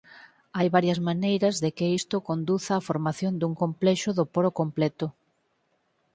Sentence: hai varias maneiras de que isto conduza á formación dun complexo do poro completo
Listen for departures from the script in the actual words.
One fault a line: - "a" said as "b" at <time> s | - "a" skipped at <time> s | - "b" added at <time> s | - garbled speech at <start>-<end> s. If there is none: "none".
none